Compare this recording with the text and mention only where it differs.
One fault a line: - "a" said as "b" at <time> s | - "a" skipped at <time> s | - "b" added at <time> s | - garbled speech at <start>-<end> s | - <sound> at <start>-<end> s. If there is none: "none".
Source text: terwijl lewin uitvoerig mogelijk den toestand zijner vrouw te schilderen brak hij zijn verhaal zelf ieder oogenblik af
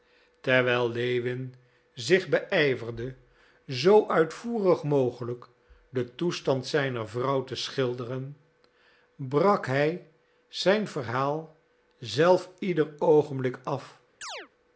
- "zich beijverde zoo" added at 1.9 s
- chirp at 14.2-14.5 s